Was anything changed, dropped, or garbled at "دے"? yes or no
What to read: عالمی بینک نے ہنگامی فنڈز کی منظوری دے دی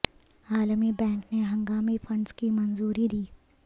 yes